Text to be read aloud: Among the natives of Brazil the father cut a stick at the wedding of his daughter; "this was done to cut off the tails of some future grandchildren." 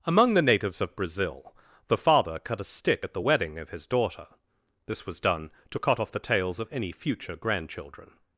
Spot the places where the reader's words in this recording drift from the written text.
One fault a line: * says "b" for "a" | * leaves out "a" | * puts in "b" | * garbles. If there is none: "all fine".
* says "any" for "some"